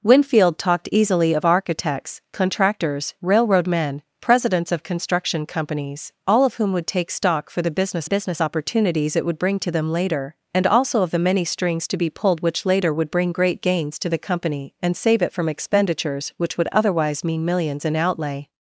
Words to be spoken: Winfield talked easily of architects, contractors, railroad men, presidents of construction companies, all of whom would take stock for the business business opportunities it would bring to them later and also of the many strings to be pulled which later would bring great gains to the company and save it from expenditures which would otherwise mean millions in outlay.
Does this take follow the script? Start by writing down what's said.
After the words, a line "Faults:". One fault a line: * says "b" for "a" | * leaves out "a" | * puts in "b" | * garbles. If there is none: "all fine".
Winfield talked easily of architects, contractors, railroad men, presidents of construction companies, all of whom would take stock for the business business opportunities it would bring to them later and also of the many strings to be pulled which later would bring great gains to the company and save it from expenditures which would otherwise mean millions in outlay.
Faults:
all fine